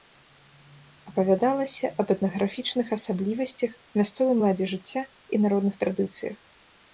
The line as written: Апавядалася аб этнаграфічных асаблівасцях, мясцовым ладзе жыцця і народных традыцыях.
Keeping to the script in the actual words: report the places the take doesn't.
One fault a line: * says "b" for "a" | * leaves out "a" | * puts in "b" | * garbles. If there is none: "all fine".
all fine